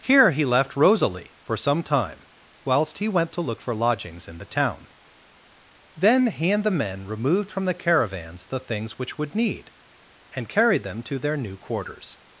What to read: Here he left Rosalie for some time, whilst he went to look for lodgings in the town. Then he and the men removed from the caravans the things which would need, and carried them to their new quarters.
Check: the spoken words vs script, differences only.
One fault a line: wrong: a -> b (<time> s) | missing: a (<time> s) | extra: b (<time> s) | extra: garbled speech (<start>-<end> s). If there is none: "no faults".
no faults